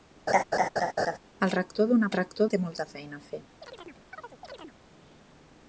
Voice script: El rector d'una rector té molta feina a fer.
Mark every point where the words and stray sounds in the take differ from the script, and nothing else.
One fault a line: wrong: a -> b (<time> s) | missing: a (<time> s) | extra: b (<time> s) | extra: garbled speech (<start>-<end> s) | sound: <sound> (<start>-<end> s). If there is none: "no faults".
sound: laugh (0.3-1.2 s)
sound: chirp (3.6-4.8 s)